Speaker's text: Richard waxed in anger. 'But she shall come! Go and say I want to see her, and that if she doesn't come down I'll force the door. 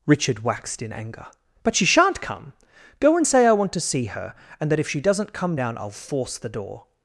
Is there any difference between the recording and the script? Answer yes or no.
yes